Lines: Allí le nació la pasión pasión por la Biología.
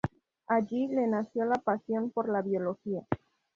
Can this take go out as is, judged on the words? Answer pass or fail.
fail